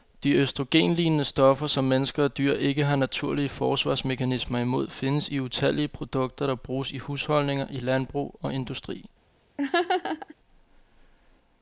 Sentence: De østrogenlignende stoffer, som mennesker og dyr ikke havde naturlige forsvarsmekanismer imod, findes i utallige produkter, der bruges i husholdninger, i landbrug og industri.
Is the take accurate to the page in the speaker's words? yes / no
no